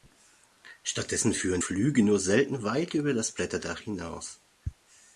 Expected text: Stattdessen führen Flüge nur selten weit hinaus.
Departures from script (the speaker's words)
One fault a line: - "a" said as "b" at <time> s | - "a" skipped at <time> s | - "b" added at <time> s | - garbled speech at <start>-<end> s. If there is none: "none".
- "über das Blätterdach" added at 2.9 s